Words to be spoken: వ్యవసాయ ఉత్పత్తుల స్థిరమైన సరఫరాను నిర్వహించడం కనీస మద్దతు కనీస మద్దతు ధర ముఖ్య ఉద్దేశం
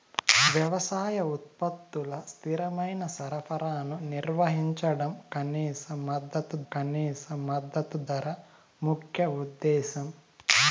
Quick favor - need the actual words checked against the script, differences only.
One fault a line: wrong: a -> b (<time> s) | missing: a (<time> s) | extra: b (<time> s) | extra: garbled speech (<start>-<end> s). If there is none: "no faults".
no faults